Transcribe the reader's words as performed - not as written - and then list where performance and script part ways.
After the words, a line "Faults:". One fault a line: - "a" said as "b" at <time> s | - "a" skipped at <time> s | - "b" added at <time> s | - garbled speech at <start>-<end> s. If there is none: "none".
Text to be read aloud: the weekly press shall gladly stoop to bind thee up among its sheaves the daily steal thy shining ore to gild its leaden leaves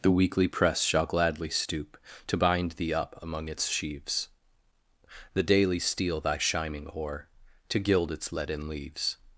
the weekly press shall gladly stoop to bind thee up among its sheaves the daily steal thy shining ore to gild its leaden leaves
Faults:
none